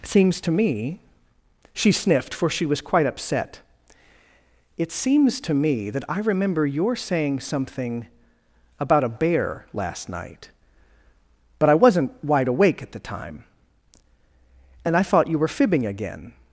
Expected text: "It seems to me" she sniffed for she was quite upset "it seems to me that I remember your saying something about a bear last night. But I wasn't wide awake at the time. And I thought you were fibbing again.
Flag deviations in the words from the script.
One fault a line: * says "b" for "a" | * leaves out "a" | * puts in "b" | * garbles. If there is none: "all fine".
* leaves out "It"